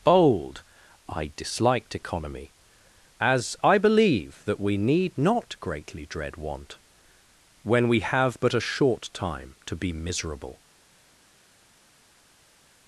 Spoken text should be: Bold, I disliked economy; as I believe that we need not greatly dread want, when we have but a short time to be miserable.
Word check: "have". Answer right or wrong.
right